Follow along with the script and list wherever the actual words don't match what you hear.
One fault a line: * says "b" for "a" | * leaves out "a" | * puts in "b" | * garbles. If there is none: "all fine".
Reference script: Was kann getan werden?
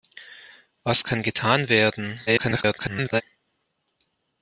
* garbles